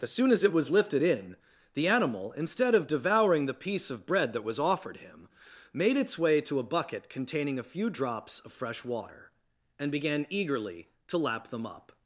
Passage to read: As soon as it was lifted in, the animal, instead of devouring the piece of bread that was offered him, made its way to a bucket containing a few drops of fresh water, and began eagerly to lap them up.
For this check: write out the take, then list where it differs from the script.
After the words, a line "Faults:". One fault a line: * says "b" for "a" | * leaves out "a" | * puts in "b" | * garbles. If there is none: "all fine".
As soon as it was lifted in, the animal, instead of devouring the piece of bread that was offered him, made its way to a bucket containing a few drops of fresh water, and began eagerly to lap them up.
Faults:
all fine